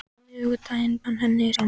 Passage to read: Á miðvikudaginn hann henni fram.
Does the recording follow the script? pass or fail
pass